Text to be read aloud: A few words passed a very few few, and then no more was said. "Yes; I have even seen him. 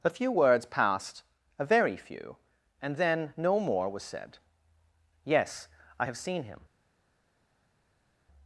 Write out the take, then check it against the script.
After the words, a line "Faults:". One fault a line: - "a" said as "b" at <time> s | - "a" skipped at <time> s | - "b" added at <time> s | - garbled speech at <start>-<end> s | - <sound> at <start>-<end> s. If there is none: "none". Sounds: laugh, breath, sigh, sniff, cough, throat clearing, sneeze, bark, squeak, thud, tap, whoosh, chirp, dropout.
A few words passed a very few, and then no more was said. "Yes; I have seen him.
Faults:
- "few" skipped at 2.4 s
- "even" skipped at 6.2 s